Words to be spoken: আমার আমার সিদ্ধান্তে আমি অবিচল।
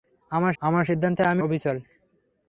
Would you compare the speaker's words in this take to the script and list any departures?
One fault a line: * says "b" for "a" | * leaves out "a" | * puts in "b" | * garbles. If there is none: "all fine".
all fine